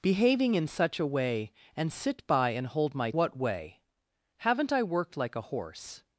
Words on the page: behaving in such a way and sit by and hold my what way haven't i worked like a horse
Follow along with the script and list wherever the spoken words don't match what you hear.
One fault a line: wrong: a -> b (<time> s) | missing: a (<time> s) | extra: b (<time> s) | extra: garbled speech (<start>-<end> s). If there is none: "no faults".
no faults